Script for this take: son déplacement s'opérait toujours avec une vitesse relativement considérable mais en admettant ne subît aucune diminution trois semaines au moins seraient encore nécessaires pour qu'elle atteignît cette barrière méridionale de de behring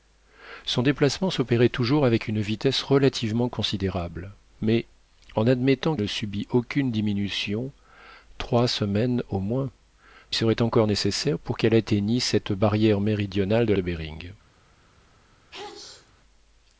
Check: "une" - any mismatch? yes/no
no